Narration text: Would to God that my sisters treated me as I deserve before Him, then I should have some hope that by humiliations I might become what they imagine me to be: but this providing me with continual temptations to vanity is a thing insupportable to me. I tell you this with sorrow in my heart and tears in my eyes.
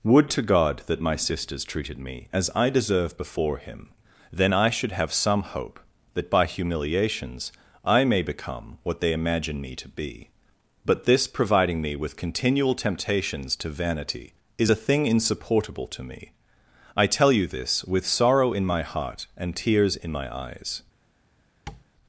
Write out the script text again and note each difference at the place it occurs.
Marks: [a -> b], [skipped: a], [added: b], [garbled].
Would to God that my sisters treated me as I deserve before Him, then I should have some hope that by humiliations I [might -> may] become what they imagine me to be: but this providing me with continual temptations to vanity is a thing insupportable to me. I tell you this with sorrow in my heart and tears in my eyes.